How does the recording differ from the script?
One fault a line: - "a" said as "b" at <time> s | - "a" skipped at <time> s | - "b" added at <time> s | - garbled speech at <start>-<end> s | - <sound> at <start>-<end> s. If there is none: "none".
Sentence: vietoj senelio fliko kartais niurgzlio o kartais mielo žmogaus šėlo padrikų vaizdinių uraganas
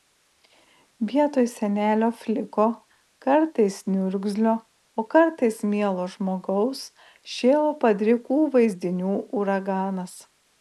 none